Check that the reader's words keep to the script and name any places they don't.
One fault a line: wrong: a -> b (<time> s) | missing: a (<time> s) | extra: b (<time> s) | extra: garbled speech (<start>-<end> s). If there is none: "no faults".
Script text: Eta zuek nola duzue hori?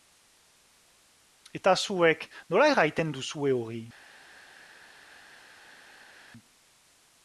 extra: erraiten (2.7 s)